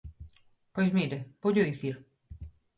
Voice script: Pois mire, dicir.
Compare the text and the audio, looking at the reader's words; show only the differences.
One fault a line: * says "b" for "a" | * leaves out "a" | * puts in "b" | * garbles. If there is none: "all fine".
* puts in "voullo"